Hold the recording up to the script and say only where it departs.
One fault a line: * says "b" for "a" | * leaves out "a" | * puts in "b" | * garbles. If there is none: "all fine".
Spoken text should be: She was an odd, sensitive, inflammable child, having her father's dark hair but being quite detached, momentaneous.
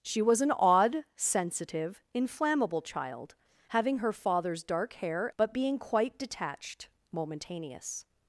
all fine